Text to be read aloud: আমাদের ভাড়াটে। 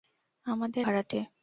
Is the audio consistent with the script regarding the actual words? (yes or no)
yes